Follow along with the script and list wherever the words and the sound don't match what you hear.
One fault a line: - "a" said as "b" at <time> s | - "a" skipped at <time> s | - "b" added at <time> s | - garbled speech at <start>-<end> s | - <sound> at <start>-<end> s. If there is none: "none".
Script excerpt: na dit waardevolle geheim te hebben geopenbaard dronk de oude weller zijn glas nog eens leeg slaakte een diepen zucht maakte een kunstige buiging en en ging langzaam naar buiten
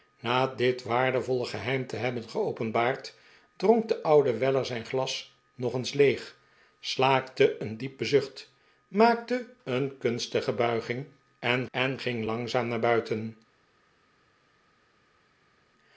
none